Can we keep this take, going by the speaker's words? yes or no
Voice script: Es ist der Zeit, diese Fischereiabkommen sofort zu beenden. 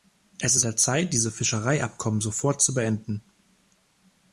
yes